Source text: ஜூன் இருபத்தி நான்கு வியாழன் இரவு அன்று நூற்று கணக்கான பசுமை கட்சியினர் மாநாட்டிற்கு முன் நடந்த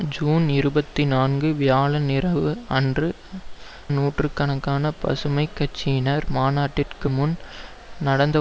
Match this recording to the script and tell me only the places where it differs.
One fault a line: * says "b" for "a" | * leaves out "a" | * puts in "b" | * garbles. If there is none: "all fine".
all fine